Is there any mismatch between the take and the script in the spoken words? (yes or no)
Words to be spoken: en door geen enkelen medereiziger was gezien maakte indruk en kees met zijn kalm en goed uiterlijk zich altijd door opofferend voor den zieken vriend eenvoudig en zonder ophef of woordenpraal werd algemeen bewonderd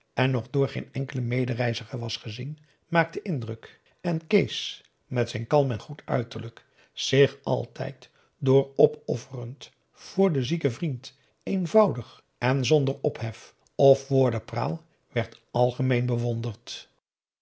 yes